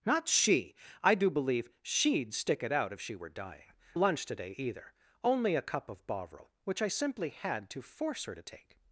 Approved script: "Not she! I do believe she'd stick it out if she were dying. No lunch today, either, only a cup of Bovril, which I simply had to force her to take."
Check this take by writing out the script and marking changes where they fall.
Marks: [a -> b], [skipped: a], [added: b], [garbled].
"Not she! I do believe she'd stick it out if she were dying. [skipped: No] lunch today, either, only a cup of Bovril, which I simply had to force her to take."